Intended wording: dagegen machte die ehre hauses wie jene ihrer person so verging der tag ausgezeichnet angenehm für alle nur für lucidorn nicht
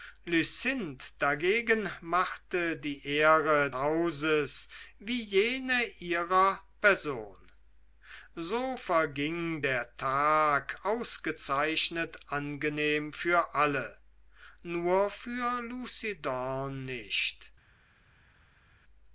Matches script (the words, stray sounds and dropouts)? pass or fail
pass